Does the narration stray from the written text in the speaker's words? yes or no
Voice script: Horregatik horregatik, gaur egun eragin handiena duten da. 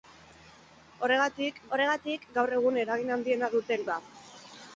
no